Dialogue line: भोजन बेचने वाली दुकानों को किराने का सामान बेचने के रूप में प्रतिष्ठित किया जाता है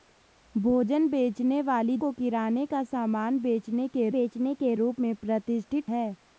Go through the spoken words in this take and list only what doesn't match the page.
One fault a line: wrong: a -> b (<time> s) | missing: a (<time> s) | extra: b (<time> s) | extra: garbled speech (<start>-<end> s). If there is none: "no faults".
missing: दुकानों (2.0 s)
extra: बेचने के (4.1 s)
missing: किया जाता (5.9 s)